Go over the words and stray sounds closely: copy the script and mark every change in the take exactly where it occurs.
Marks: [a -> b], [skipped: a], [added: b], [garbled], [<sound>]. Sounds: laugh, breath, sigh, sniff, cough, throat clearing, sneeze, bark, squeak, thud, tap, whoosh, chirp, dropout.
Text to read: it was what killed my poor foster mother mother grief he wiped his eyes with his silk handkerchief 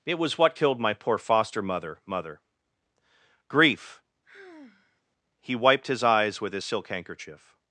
it was what killed my poor foster mother mother grief [sigh] he wiped his eyes with his silk handkerchief